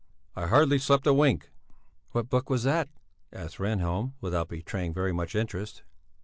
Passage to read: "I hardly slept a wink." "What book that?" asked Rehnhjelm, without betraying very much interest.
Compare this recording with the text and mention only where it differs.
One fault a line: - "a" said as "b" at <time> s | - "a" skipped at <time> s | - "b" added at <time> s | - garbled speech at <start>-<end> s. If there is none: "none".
- "was" added at 2.5 s